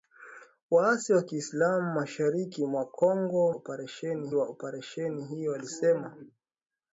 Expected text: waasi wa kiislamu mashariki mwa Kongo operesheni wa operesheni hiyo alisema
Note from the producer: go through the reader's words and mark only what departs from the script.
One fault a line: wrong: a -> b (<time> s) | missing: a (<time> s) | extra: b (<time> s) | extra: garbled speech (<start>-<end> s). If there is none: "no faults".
no faults